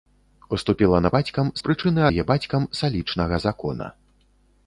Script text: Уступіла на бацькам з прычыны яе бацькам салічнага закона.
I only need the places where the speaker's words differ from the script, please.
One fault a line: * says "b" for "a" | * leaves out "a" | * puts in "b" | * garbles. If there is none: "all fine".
all fine